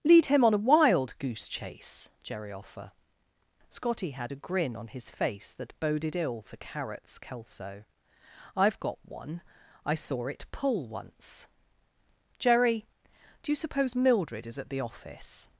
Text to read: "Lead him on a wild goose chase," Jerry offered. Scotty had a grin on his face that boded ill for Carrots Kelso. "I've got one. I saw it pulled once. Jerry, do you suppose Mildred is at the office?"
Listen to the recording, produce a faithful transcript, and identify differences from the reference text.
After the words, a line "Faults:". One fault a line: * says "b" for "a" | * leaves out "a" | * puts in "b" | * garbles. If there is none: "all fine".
"Lead him on a wild goose chase," Jerry offer. Scotty had a grin on his face that boded ill for Carrots Kelso. "I've got one. I saw it pull once. Jerry, do you suppose Mildred is at the office?"
Faults:
* says "offer" for "offered"
* says "pull" for "pulled"